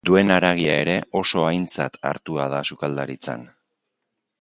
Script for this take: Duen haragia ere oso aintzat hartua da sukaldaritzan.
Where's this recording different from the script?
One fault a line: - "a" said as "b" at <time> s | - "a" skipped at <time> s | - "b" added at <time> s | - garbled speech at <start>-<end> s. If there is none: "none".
none